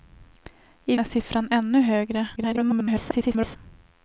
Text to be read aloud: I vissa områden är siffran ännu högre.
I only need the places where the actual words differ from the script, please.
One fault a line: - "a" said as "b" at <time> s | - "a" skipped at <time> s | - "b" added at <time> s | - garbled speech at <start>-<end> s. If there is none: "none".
- "vissa områden" skipped at 0.9 s
- garbled speech at 2.4-3.6 s